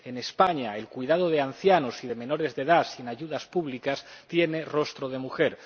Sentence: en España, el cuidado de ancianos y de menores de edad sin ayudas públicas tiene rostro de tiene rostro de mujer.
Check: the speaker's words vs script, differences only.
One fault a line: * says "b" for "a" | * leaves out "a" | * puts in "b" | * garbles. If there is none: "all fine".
* leaves out "tiene rostro de"